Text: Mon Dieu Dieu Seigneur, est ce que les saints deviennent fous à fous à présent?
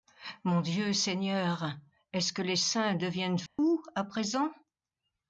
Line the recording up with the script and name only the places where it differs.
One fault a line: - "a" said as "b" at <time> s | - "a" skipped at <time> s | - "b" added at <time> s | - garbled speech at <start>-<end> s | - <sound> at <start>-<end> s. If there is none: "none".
- "Dieu" skipped at 0.9 s
- dropout at 3.5-3.6 s
- "fous à" skipped at 4.0 s